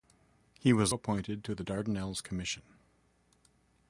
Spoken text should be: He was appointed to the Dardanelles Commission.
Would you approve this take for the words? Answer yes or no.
yes